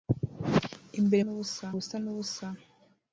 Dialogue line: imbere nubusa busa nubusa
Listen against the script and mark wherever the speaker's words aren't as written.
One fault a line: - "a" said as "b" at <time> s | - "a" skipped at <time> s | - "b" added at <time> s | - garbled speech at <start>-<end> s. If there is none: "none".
none